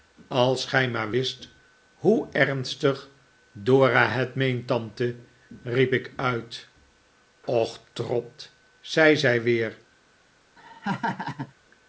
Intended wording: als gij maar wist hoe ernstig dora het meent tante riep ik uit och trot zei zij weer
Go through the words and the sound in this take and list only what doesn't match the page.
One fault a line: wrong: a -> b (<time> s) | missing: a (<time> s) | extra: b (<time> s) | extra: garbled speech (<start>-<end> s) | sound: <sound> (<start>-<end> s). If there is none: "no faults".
sound: laugh (10.6-11.5 s)